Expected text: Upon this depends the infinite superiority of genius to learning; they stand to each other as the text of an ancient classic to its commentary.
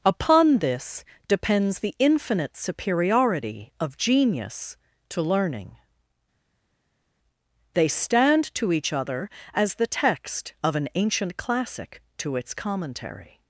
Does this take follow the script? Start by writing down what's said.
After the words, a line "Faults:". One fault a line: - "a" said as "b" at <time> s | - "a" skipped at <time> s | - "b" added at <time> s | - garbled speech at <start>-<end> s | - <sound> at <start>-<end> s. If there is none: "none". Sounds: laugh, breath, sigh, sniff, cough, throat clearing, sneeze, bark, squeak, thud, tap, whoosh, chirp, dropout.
Upon this depends the infinite superiority of genius to learning; they stand to each other as the text of an ancient classic to its commentary.
Faults:
none